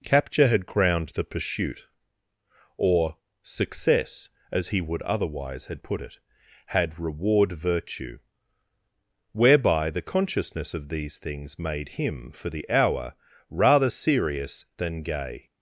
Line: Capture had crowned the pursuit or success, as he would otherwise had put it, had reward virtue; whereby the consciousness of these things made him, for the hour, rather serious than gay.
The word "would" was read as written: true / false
true